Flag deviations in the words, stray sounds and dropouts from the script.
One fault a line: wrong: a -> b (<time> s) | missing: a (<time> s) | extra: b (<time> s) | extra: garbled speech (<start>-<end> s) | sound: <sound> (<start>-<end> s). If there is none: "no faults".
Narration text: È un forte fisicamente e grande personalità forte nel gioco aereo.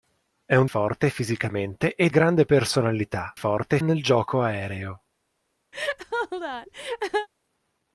sound: laugh (5.7-7.3 s)